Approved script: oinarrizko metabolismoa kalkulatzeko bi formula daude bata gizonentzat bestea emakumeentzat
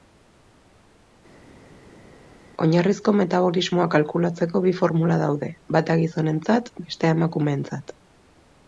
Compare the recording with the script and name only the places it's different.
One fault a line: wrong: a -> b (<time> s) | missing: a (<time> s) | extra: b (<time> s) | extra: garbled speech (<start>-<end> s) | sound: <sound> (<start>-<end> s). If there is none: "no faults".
no faults